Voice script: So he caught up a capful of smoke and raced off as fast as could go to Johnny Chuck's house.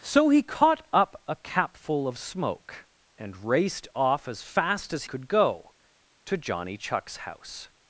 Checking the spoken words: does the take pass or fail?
pass